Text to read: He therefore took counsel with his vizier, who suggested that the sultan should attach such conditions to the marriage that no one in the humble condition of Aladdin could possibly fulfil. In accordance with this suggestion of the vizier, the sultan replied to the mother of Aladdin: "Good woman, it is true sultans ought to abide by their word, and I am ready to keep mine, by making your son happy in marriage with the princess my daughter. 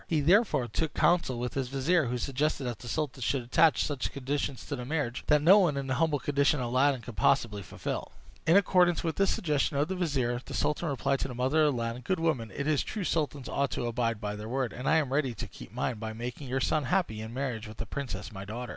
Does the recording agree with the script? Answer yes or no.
yes